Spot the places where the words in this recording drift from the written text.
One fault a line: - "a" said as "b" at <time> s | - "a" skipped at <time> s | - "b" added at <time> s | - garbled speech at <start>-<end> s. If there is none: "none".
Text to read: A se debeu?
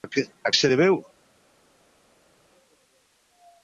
none